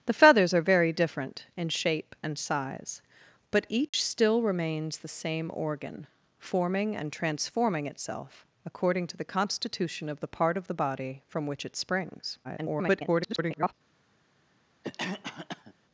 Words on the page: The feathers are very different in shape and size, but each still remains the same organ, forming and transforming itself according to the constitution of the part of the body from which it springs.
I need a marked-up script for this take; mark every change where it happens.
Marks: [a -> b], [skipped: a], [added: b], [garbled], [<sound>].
The feathers are very different in shape and size, but each [dropout] still remains the same organ, forming and transforming itself according to the constitution of the part of the body from which it springs. [garbled] [cough]